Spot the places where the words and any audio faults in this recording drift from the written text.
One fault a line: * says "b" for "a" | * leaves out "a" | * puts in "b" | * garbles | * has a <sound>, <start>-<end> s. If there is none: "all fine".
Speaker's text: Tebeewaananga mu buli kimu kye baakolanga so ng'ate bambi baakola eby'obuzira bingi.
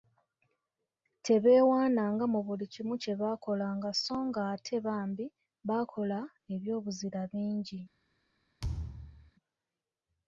* has a thud, 8.6-9.3 s